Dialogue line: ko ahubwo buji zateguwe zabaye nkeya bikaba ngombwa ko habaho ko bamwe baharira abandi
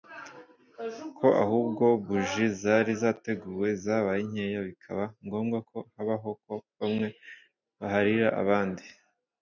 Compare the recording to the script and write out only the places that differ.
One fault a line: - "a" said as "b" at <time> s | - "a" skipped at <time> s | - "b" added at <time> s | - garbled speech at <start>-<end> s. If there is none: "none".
- "zari" added at 2.6 s